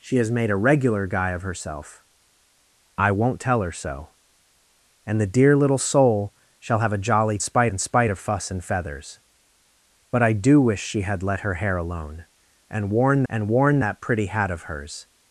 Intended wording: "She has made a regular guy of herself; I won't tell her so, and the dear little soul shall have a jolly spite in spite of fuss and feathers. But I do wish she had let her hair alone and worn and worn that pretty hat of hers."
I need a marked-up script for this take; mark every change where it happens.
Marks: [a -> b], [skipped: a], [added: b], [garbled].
"She has made a regular guy of herself; I won't tell her so, and the dear little soul shall have a jolly spite in spite of fuss and feathers. But I do wish she had let her hair alone and worn and worn that pretty hat of hers."